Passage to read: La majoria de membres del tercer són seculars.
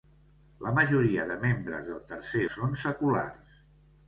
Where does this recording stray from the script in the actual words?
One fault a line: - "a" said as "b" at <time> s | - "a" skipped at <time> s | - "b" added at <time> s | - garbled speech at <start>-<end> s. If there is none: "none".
none